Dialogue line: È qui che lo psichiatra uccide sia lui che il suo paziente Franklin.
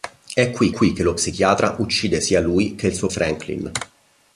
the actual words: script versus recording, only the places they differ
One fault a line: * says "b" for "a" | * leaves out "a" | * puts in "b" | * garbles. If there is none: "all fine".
* puts in "qui"
* leaves out "paziente"